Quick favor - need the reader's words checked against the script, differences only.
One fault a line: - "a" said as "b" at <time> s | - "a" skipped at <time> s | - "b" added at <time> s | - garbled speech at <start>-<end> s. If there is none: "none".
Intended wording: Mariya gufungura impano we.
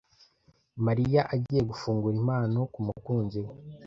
- "agiye" added at 1.3 s
- "kumukunzi" added at 2.7 s